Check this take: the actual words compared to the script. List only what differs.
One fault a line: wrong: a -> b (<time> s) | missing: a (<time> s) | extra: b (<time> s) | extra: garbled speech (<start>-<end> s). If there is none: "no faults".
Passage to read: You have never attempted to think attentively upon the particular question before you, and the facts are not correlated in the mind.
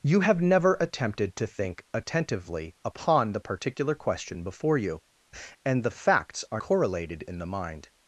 missing: not (6.6 s)